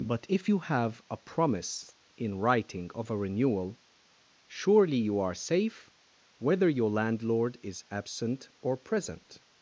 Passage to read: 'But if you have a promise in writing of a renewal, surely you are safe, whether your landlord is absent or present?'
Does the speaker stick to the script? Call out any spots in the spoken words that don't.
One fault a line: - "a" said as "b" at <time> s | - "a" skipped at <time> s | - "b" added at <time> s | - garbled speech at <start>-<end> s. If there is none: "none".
none